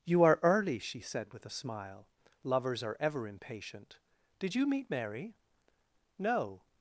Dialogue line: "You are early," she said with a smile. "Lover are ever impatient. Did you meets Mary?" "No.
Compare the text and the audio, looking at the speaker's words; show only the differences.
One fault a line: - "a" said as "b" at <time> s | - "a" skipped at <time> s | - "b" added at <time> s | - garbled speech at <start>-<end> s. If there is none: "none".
- "Lover" said as "Lovers" at 2.4 s
- "meets" said as "meet" at 4.7 s